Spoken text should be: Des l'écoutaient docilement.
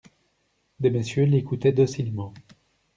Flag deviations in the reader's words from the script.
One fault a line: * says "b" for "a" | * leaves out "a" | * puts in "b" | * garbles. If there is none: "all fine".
* puts in "messieurs"